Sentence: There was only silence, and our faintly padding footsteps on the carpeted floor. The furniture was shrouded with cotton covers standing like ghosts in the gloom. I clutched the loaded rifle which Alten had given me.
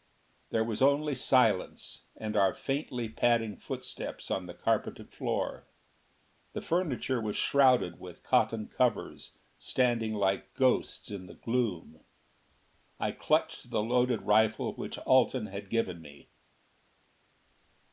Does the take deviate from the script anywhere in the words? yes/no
no